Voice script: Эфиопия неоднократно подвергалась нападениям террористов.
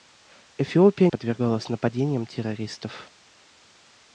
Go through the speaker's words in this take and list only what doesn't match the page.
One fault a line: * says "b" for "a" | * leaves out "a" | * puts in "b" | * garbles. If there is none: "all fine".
* leaves out "неоднократно"